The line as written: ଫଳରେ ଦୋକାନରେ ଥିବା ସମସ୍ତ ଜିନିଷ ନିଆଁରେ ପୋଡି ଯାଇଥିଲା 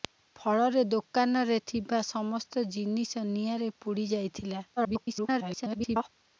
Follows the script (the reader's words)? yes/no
no